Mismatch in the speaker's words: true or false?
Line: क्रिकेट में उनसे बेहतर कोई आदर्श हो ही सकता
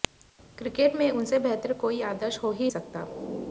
false